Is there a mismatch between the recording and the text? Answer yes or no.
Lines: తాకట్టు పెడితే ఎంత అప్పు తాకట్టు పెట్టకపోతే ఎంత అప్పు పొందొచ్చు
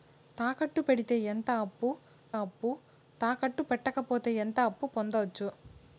yes